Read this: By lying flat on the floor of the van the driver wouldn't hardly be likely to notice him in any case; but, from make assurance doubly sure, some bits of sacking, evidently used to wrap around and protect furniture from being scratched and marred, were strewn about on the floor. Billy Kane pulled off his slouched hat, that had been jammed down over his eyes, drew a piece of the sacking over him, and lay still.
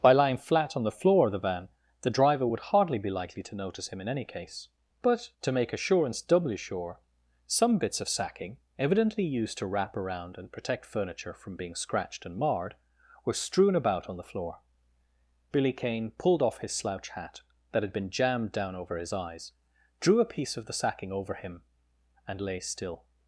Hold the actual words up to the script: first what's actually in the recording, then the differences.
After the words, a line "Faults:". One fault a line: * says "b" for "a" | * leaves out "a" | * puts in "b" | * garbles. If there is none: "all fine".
By lying flat on the floor of the van the driver would hardly be likely to notice him in any case; but, to make assurance doubly sure, some bits of sacking, evidently used to wrap around and protect furniture from being scratched and marred, were strewn about on the floor. Billy Kane pulled off his slouch hat, that had been jammed down over his eyes, drew a piece of the sacking over him, and lay still.
Faults:
* says "would" for "wouldn't"
* says "to" for "from"
* says "slouch" for "slouched"